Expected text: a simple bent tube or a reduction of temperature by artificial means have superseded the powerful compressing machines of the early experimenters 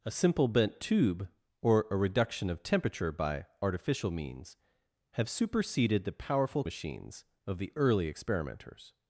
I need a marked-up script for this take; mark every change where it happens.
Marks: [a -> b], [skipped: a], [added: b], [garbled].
a simple bent tube or a reduction of temperature by artificial means have superseded the powerful [skipped: compressing] machines of the early experimenters